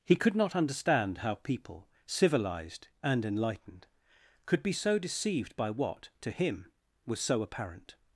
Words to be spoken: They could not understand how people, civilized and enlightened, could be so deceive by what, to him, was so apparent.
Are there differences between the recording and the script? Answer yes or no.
yes